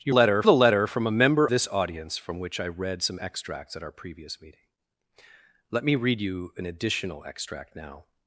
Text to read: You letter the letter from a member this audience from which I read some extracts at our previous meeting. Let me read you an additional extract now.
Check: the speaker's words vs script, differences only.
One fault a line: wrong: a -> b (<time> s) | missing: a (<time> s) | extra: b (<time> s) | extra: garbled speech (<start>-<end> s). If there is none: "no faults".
no faults